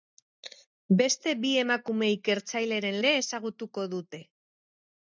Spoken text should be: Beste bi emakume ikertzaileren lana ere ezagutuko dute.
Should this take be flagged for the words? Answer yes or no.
yes